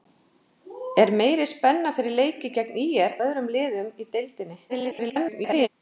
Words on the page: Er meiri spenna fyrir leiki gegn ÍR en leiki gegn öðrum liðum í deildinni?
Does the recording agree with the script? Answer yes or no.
no